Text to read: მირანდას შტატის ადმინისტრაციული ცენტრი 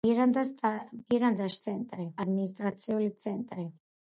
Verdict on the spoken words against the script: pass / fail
fail